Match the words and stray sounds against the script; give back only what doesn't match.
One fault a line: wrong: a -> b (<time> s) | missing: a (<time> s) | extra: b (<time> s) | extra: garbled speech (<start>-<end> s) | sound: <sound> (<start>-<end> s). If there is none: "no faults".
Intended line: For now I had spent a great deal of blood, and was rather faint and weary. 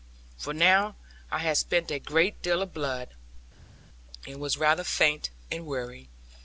no faults